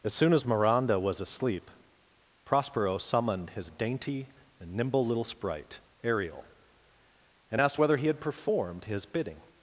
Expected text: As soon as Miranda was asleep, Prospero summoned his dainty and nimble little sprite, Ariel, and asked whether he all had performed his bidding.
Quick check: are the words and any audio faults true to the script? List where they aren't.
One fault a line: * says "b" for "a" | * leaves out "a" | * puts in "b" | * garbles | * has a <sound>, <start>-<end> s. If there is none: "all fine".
* leaves out "all"